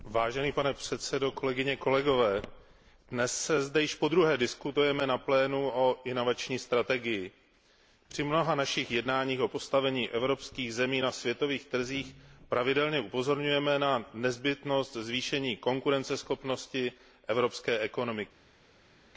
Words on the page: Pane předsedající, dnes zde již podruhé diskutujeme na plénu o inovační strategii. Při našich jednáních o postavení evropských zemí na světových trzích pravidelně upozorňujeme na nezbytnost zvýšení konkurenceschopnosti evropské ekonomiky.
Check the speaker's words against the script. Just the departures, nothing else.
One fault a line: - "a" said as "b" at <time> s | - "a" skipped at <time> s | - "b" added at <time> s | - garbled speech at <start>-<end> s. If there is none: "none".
- "mnoha" added at 8.2 s